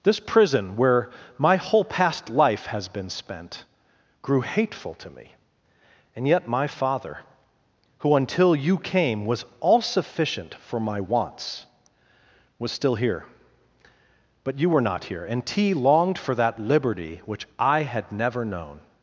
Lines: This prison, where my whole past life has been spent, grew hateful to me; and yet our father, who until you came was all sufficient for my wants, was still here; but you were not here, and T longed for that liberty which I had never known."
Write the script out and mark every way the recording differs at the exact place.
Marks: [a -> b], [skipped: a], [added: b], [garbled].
This prison, where my whole past life has been spent, grew hateful to me; and yet [our -> my] father, who until you came was all sufficient for my wants, was still here; but you were not here, and T longed for that liberty which I had never known."